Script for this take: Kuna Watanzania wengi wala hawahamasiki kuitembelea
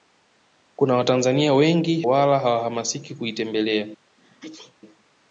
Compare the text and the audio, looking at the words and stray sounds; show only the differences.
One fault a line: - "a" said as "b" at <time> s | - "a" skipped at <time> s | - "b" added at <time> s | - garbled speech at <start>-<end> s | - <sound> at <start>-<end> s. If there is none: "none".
- sneeze at 4.2-4.8 s